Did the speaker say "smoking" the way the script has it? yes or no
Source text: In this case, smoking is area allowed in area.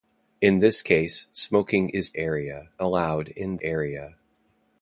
yes